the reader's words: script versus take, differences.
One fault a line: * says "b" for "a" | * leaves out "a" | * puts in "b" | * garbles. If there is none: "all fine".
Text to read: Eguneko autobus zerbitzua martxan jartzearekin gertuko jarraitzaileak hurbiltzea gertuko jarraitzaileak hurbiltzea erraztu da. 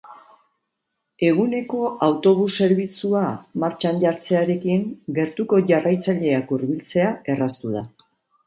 * leaves out "gertuko jarraitzaileak hurbiltzea"